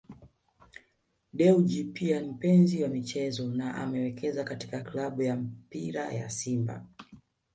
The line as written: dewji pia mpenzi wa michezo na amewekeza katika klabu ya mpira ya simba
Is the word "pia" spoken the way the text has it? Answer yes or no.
yes